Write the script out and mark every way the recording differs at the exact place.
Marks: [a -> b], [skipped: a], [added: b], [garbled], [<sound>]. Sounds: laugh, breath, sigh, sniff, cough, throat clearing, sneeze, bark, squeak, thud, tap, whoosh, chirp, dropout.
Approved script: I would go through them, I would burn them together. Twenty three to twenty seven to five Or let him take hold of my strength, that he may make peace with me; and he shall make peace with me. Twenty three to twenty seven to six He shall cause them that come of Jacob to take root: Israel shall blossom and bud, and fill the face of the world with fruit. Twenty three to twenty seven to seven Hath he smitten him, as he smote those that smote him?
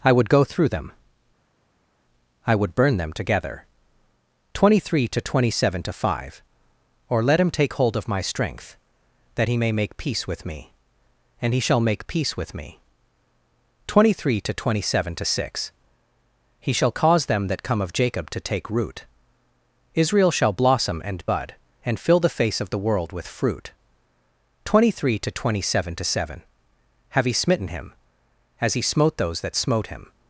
I would go through them, I would burn them together. Twenty three to twenty seven to five Or let him take hold of my strength, that he may make peace with me; and he shall make peace with me. Twenty three to twenty seven to six He shall cause them that come of Jacob to take root: Israel shall blossom and bud, and fill the face of the world with fruit. Twenty three to twenty seven to seven [Hath -> Have] he smitten him, as he smote those that smote him?